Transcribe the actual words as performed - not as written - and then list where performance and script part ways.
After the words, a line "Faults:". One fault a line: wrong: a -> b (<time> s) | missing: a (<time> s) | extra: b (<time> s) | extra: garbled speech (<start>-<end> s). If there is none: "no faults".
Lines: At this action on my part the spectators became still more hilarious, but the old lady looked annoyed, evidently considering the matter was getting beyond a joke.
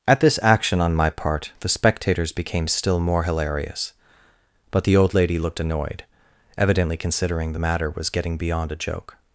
At this action on my part the spectators became still more hilarious, but the old lady looked annoyed, evidently considering the matter was getting beyond a joke.
Faults:
no faults